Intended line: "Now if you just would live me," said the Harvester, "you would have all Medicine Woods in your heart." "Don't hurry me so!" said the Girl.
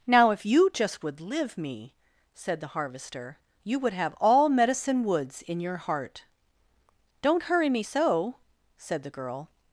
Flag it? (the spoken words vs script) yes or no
no